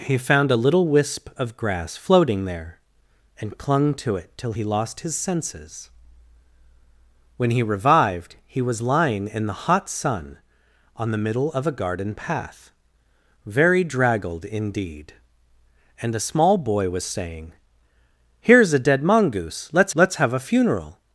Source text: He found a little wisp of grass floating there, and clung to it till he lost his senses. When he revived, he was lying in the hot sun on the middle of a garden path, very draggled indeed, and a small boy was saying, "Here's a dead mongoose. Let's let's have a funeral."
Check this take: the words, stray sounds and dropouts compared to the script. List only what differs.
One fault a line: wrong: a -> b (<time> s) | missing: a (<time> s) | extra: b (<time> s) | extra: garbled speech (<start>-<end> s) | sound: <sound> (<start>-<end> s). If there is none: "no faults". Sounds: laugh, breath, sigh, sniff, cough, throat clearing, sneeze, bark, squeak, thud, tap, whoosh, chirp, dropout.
no faults